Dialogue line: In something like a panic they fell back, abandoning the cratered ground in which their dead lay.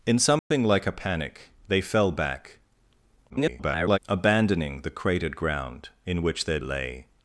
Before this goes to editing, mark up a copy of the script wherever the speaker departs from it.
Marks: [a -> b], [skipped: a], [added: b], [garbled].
In something like a panic they fell back, [garbled] abandoning the cratered ground in which their [skipped: dead] lay.